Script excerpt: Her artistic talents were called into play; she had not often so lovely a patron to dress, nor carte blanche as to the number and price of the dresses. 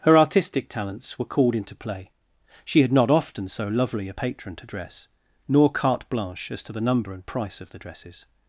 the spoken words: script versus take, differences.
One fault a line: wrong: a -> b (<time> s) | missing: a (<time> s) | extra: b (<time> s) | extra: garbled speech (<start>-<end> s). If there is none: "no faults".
no faults